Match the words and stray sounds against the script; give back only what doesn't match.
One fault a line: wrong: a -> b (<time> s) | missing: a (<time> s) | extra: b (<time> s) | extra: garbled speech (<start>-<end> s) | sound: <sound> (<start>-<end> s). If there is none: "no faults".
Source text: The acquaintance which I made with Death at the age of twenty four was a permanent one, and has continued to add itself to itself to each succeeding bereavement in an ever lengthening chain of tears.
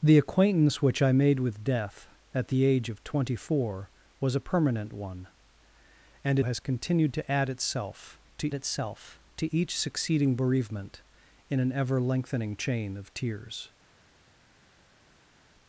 no faults